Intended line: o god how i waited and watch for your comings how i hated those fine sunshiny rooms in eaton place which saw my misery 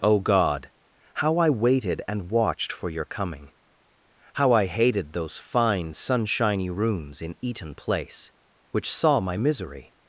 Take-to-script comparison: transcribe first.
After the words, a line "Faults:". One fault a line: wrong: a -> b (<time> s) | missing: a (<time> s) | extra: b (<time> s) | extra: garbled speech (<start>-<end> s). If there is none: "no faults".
o god how i waited and watched for your coming how i hated those fine sunshiny rooms in eaton place which saw my misery
Faults:
wrong: watch -> watched (2.3 s)
wrong: comings -> coming (3.0 s)